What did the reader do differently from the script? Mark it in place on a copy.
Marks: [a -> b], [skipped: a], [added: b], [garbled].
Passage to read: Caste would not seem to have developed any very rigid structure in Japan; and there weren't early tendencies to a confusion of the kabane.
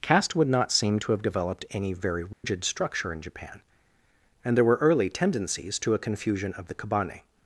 Caste would not seem to have developed any very rigid structure in Japan; and there [weren't -> were] early tendencies to a confusion of the kabane.